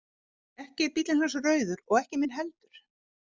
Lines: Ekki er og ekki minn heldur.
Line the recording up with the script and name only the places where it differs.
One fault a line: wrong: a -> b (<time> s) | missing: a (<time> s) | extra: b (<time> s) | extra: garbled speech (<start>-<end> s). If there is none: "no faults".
extra: bíllinn hans rauður (0.9 s)